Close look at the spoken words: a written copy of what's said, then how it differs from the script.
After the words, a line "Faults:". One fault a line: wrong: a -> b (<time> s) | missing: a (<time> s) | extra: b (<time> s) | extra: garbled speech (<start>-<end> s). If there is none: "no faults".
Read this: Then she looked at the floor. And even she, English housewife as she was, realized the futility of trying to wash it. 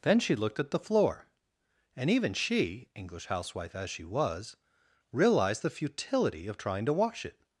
Then she looked at the floor. And even she, English housewife as she was, realized the futility of trying to wash it.
Faults:
no faults